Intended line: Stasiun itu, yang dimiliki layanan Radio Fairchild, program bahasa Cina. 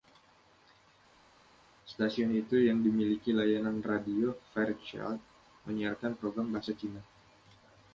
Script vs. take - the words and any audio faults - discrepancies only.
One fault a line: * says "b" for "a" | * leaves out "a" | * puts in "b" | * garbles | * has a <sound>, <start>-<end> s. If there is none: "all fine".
* puts in "menyiarkan"